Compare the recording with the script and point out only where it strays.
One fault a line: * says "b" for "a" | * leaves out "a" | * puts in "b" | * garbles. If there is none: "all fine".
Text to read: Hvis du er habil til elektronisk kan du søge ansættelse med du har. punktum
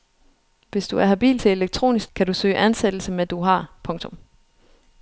all fine